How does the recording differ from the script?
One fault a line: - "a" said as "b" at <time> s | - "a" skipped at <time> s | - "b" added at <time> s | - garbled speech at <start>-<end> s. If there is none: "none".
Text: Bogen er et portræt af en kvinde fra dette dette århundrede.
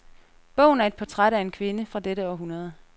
- "dette" skipped at 2.3 s